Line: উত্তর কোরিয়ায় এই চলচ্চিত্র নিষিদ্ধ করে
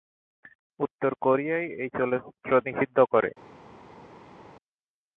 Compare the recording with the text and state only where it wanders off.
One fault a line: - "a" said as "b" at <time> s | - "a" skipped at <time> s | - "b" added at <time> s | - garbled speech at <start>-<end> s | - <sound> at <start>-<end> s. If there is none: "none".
none